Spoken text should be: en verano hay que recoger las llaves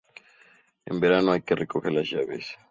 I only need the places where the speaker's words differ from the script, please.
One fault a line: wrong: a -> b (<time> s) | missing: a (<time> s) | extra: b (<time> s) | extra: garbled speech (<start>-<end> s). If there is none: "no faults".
no faults